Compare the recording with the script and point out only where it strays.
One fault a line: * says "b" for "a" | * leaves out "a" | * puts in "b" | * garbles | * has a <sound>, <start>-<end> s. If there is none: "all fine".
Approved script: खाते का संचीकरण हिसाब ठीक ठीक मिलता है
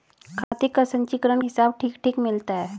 * has a dropout, 0.4-0.5 s